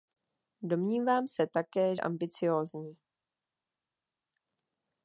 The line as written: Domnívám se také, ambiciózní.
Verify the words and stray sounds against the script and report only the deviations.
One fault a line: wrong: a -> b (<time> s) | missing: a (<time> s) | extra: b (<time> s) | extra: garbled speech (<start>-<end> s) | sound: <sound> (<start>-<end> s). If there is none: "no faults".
no faults